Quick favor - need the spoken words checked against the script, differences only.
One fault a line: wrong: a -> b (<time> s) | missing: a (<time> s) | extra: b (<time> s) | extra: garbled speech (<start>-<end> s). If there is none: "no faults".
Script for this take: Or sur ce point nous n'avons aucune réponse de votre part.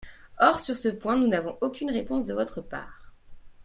no faults